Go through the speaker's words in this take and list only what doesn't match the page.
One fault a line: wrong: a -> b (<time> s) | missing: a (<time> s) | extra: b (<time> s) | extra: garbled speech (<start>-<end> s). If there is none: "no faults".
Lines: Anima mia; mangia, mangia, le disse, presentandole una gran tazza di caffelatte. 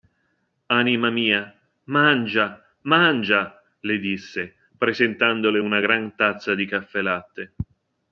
no faults